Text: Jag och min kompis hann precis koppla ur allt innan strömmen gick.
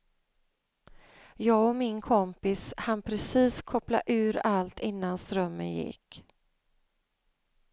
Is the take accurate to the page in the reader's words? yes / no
yes